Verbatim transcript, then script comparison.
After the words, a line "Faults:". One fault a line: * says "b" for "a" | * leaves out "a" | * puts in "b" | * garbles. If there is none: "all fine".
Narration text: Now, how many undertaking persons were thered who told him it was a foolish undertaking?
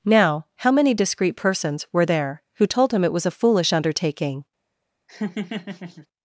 Now, how many discreet persons were there who told him it was a foolish undertaking?
Faults:
* says "discreet" for "undertaking"
* says "there" for "thered"